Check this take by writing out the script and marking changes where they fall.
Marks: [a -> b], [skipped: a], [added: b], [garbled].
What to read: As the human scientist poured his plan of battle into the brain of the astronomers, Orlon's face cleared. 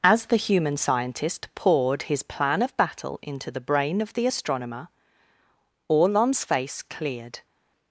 As the human scientist poured his plan of battle into the brain of the [astronomers, -> astronomer] Orlon's face cleared.